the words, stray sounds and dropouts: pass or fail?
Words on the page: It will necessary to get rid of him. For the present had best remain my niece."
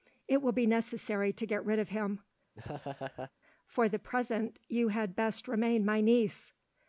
fail